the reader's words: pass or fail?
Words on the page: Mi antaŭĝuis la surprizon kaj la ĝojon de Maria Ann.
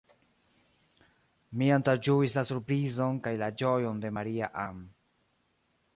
pass